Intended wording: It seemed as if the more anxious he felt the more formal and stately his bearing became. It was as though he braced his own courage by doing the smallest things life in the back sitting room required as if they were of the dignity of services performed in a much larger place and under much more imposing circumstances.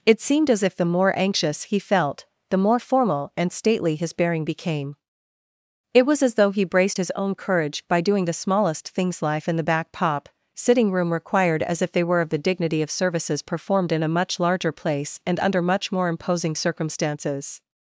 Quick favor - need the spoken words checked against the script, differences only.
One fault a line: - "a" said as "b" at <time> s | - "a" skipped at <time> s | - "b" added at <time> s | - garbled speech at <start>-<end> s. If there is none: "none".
- "pop" added at 9.9 s